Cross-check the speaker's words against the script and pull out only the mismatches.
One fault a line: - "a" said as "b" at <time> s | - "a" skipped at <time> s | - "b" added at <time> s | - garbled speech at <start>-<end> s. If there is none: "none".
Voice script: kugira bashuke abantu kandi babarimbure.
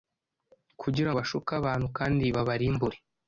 none